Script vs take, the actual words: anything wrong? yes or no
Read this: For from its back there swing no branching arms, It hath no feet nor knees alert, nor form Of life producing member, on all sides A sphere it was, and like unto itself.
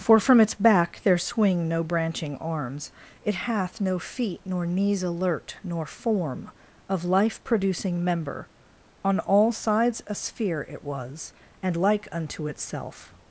no